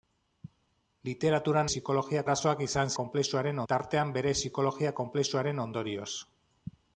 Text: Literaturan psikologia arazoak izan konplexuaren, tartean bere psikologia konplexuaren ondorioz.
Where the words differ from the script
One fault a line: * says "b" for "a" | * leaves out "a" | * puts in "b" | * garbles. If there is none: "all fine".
all fine